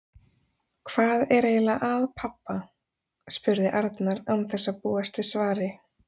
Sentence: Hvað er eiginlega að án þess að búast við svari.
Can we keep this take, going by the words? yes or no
no